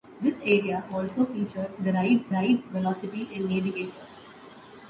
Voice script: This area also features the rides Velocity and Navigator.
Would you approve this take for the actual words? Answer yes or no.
no